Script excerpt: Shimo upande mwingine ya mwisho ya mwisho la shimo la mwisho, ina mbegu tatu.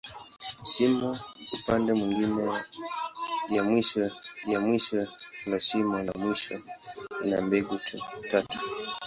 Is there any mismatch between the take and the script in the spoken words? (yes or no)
no